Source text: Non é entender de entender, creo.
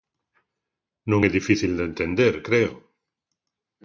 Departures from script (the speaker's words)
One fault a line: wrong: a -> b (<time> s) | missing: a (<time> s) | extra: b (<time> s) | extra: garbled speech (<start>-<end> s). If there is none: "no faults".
wrong: entender -> difícil (1.4 s)